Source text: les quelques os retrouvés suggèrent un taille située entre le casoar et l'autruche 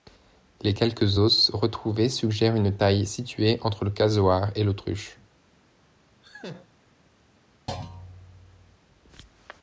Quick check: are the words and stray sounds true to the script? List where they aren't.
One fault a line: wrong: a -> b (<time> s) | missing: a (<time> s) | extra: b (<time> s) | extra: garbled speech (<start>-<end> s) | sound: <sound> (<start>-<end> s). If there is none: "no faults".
wrong: un -> une (2.5 s)
sound: laugh (6.2-6.7 s)
sound: thud (7.7-8.8 s)